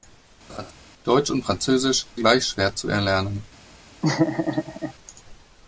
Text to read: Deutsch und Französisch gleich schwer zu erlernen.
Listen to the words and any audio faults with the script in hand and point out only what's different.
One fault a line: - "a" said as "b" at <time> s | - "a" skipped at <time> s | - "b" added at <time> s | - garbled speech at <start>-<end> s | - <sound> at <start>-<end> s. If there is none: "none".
- laugh at 0.5-0.7 s
- laugh at 4.0-4.9 s